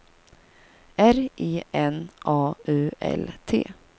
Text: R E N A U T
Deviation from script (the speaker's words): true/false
true